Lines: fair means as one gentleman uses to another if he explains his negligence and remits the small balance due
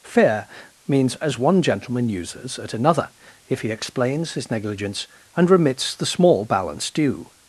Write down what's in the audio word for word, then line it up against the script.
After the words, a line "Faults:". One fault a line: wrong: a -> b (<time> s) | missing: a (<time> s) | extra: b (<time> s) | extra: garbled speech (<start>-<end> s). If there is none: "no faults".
fair means as one gentleman uses at another if he explains his negligence and remits the small balance due
Faults:
wrong: to -> at (2.6 s)